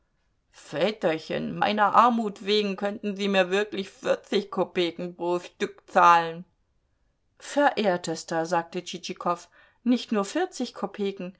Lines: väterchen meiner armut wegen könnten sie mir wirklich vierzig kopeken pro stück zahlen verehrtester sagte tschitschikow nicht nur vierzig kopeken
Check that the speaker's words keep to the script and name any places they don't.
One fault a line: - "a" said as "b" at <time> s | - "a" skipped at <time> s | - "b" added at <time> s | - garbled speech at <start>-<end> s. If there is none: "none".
none